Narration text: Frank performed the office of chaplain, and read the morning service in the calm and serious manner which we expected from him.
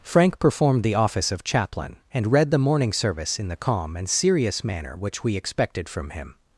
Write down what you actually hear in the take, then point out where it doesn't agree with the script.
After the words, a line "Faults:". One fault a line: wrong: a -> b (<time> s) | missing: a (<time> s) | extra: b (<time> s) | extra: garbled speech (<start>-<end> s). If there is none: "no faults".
Frank performed the office of chaplain, and read the morning service in the calm and serious manner which we expected from him.
Faults:
no faults